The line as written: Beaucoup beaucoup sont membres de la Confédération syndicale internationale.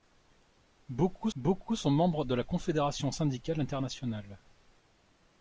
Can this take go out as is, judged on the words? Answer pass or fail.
pass